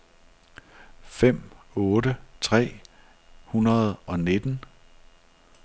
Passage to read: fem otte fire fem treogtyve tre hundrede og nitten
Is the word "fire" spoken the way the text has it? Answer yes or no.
no